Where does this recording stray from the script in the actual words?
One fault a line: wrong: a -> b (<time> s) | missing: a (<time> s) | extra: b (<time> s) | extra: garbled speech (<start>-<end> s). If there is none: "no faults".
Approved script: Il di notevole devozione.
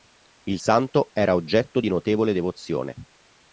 extra: santo era oggetto (0.5 s)